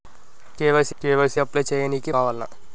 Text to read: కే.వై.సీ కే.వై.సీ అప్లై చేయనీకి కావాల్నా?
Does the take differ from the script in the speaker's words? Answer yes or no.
no